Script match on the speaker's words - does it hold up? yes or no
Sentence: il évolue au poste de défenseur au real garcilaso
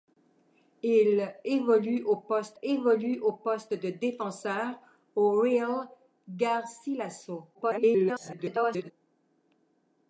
no